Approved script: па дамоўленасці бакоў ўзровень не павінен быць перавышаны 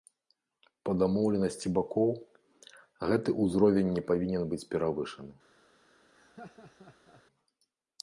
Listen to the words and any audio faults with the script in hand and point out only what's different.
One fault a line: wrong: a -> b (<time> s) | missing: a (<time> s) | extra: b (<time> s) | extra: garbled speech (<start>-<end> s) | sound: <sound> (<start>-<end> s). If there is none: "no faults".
extra: гэты (3.1 s)
sound: laugh (6.1-7.2 s)